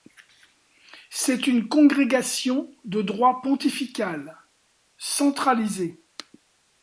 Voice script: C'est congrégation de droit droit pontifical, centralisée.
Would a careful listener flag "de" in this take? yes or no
no